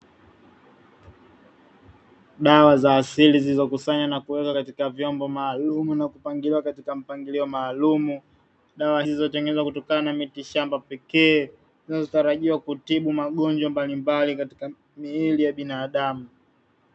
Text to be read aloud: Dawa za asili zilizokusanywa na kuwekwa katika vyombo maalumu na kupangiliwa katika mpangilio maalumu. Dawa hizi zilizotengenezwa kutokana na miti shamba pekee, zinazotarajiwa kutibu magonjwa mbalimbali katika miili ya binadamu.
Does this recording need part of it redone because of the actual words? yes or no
yes